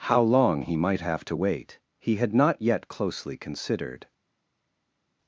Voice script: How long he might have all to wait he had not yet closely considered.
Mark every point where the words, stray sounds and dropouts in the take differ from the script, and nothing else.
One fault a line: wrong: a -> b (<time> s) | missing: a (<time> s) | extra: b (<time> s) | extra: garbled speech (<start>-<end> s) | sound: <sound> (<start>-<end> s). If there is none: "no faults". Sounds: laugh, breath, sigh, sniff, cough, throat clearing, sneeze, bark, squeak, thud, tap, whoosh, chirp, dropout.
missing: all (1.2 s)